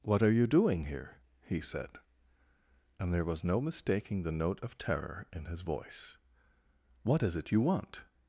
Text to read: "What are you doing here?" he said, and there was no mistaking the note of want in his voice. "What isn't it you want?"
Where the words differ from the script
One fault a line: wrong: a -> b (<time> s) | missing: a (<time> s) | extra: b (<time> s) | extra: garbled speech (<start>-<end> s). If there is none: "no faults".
wrong: want -> terror (4.8 s)
wrong: isn't -> is (7.2 s)